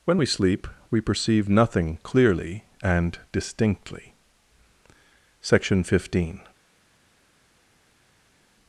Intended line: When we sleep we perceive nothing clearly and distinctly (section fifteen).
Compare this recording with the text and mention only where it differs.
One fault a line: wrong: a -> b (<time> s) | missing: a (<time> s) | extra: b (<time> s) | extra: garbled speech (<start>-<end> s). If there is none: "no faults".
no faults